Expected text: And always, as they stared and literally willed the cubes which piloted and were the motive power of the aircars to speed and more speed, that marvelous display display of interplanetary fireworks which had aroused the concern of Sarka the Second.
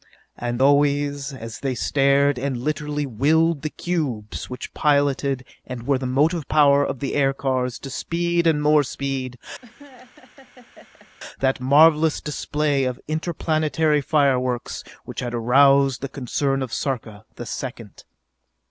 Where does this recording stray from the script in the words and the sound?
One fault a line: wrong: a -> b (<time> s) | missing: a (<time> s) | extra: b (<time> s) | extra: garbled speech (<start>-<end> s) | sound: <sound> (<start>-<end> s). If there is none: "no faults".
sound: laugh (9.6-11.1 s)
missing: display (12.8 s)